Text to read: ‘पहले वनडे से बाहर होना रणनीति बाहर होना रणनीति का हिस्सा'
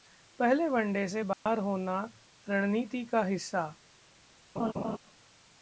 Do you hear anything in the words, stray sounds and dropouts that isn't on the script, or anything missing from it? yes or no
yes